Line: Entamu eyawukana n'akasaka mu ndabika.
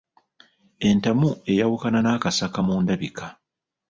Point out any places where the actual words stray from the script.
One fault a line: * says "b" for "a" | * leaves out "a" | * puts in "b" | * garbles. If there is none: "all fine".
all fine